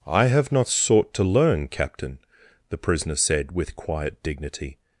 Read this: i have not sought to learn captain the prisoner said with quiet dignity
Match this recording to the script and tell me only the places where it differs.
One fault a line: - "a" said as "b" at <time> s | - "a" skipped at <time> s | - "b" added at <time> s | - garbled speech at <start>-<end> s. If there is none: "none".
none